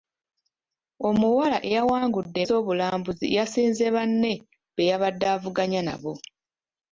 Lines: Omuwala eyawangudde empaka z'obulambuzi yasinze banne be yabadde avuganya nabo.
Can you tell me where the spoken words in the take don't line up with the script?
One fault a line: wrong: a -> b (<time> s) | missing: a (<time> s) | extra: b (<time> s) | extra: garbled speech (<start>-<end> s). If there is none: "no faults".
missing: empaka (2.4 s)